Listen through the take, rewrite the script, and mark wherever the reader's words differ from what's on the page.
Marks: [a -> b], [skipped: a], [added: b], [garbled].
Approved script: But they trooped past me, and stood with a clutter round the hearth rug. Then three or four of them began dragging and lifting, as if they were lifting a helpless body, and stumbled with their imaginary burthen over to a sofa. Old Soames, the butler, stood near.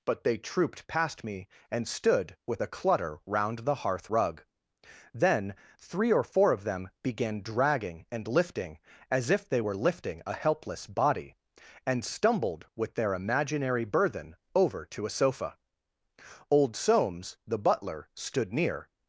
But they trooped past me, and stood with a clutter round the hearth rug. Then three or four of them began dragging and lifting, as if they were lifting a helpless body, and stumbled with their imaginary burthen over to a sofa. Old Soames, the butler, stood near.